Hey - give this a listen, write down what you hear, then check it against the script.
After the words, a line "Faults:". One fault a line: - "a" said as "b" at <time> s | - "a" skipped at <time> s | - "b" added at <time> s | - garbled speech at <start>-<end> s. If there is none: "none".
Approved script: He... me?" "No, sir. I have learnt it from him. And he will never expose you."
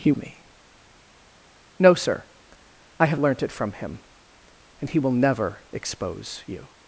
He... me?" "No, sir. I have learnt it from him. And he will never expose you."
Faults:
none